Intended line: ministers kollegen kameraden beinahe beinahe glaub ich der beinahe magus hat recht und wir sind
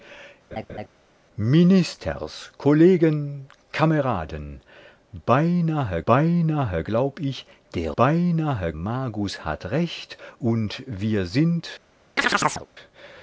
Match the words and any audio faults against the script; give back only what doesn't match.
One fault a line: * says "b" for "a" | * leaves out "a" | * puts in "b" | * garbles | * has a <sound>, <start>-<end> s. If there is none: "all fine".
* has a laugh, 0.5-0.9 s
* has a chirp, 12.2-12.7 s